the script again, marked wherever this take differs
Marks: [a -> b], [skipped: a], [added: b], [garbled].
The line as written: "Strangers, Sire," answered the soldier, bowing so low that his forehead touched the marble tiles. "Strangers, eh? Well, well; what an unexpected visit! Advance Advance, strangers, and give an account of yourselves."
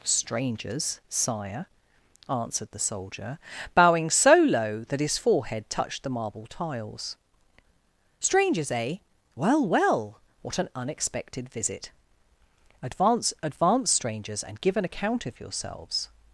"Strangers, Sire," answered the soldier, bowing so low that his forehead touched the marble tiles. "Strangers, eh? Well, well; what an unexpected visit! Advance Advance, strangers, and give an account of yourselves."